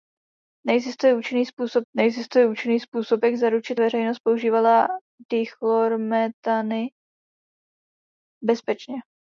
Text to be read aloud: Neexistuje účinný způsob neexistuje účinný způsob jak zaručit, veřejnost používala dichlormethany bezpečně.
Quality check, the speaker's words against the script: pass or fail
pass